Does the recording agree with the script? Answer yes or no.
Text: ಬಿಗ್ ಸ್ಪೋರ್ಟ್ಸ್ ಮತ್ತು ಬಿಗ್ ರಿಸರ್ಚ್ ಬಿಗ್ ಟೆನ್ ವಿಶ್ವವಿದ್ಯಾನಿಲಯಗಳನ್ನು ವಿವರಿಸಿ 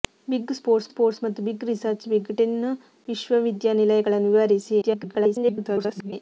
no